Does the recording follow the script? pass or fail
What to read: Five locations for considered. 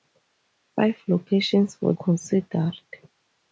pass